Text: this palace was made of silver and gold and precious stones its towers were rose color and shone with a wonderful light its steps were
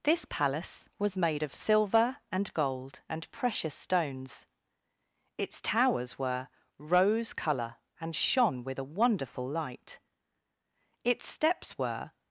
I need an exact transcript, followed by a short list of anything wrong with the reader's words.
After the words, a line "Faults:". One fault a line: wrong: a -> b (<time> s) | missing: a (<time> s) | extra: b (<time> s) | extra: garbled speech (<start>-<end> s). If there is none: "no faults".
this palace was made of silver and gold and precious stones its towers were rose color and shone with a wonderful light its steps were
Faults:
no faults